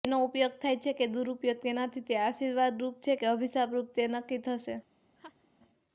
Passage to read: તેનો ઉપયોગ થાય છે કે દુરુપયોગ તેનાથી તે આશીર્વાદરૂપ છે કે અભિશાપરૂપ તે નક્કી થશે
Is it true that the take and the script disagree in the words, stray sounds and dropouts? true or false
true